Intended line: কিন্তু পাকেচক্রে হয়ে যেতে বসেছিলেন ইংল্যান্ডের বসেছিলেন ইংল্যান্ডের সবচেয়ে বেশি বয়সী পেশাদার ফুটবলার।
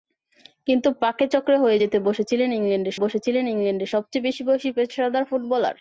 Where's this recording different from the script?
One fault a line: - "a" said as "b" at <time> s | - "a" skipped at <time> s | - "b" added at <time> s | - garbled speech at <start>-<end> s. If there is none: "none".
none